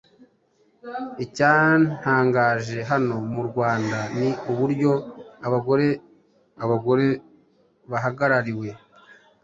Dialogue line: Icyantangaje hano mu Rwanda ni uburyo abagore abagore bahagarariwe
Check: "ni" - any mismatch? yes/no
no